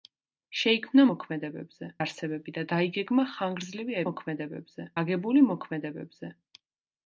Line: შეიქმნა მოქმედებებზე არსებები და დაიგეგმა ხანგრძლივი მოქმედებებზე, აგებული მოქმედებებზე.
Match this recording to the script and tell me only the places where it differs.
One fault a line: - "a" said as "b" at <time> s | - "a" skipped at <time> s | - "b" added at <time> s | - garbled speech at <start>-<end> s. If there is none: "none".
none